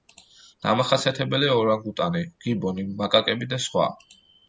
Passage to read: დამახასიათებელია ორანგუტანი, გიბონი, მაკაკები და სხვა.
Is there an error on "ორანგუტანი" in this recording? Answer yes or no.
no